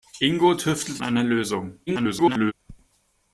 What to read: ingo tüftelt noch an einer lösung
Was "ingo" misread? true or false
false